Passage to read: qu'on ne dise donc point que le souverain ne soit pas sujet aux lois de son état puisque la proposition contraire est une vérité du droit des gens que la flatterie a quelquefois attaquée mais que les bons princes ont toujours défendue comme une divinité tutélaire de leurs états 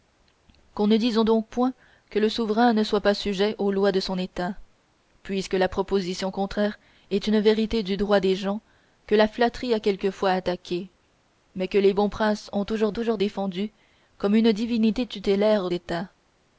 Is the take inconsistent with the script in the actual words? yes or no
yes